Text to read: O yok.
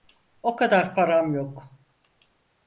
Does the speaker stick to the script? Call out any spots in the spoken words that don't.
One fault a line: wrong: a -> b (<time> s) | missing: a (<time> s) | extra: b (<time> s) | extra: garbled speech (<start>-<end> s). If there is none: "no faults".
extra: kadar param (0.6 s)